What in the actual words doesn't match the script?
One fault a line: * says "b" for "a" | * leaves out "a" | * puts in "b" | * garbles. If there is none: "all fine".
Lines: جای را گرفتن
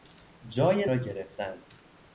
all fine